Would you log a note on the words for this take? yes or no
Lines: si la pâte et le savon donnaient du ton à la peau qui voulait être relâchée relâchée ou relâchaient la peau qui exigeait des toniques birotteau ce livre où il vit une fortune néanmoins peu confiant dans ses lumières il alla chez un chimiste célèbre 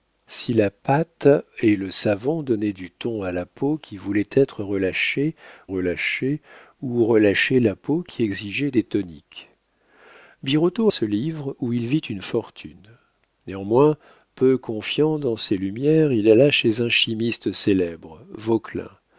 no